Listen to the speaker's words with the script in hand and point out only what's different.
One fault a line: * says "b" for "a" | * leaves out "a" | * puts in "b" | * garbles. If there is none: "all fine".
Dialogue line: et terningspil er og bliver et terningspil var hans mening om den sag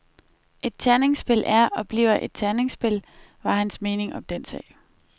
all fine